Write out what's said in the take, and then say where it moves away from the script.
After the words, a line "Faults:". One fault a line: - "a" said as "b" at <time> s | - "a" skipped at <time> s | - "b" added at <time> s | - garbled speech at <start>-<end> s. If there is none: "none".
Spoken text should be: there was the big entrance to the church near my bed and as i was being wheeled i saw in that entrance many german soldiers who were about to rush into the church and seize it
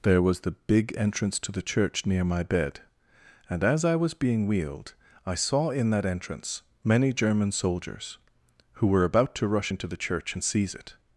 there was the big entrance to the church near my bed and as i was being wheeled i saw in that entrance many german soldiers who were about to rush into the church and seize it
Faults:
none